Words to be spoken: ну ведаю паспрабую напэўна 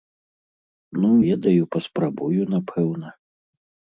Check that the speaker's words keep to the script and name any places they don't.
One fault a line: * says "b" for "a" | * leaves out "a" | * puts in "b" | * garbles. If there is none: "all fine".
all fine